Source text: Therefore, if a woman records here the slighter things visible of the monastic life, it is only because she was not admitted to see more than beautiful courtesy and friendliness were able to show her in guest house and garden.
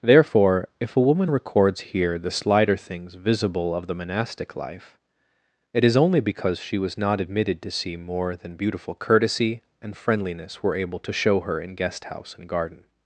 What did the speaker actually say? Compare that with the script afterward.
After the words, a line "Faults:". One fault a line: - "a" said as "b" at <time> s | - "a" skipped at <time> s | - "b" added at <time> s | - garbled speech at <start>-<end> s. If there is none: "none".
Therefore, if a woman records here the slighter things visible of the monastic life, it is only because she was not admitted to see more than beautiful courtesy and friendliness were able to show her in guest house and garden.
Faults:
none